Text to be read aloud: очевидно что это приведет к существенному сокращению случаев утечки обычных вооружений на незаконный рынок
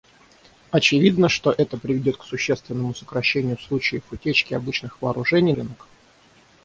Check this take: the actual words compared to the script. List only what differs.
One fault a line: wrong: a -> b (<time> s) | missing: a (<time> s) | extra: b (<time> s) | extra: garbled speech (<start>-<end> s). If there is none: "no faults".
missing: на незаконный (5.5 s)